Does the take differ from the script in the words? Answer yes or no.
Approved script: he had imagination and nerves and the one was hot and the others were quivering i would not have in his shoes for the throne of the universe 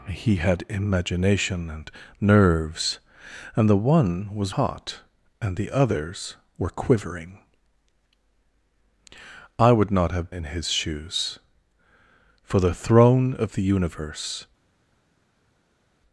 no